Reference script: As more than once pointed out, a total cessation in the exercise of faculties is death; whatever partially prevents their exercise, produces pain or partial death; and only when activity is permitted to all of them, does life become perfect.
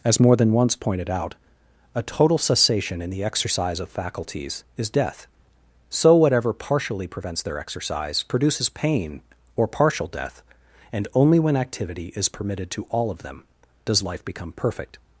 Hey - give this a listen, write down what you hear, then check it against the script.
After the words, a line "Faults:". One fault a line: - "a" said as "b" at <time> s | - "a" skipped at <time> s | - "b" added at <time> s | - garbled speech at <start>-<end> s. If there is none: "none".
As more than once pointed out, a total cessation in the exercise of faculties is death; so whatever partially prevents their exercise, produces pain or partial death; and only when activity is permitted to all of them, does life become perfect.
Faults:
- "so" added at 5.9 s